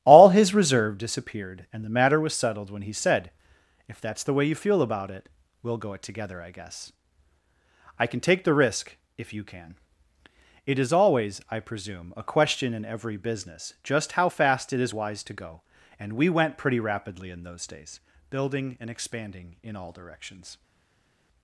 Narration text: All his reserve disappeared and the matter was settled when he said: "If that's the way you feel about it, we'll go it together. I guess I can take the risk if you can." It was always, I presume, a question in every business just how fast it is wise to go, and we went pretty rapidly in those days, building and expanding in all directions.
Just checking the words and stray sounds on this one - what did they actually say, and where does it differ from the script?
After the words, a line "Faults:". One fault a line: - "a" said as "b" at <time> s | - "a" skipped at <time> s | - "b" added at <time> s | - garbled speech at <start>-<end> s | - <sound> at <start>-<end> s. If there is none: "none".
All his reserve disappeared and the matter was settled when he said: "If that's the way you feel about it, we'll go it together. I guess I can take the risk if you can." It is always, I presume, a question in every business just how fast it is wise to go, and we went pretty rapidly in those days, building and expanding in all directions.
Faults:
- "was" said as "is" at 10.8 s